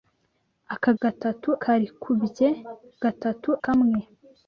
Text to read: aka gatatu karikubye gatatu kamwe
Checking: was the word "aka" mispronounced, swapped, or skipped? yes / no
no